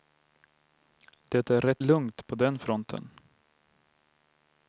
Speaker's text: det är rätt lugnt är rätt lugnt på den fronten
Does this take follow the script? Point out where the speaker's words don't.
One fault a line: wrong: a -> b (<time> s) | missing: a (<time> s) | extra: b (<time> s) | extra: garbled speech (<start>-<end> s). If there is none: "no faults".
missing: är rätt lugnt (2.3 s)